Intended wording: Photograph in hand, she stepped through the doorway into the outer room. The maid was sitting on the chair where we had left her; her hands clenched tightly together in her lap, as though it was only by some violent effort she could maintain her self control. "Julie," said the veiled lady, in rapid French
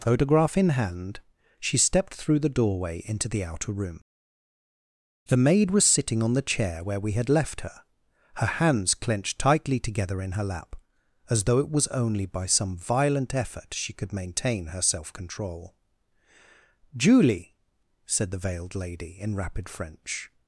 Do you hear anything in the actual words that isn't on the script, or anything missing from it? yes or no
no